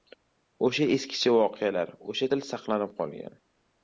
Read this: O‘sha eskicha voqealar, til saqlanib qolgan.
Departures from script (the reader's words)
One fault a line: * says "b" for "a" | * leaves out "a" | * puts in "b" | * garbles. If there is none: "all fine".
* puts in "o‘sha"